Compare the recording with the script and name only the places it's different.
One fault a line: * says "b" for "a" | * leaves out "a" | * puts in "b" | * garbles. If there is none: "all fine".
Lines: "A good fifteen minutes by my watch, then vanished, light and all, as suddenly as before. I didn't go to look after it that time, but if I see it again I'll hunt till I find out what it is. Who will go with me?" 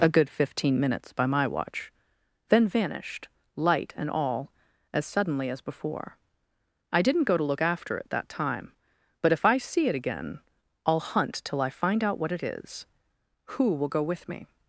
all fine